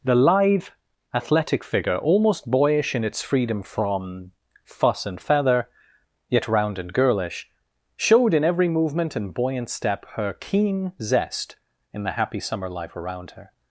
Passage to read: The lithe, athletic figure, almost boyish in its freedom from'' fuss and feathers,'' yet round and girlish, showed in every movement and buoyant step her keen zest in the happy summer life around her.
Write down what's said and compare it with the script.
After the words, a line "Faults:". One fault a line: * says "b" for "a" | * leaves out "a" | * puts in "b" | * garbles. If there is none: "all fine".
The lithe, athletic figure, almost boyish in its freedom from'' fuss and feather,'' yet round and girlish, showed in every movement and buoyant step her keen zest in the happy summer life around her.
Faults:
* says "feather" for "feathers"